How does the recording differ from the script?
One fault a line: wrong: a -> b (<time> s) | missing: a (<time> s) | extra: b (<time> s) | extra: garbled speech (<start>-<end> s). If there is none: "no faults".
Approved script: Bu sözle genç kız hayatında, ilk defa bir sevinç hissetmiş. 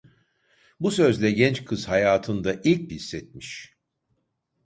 missing: defa bir sevinç (2.9 s)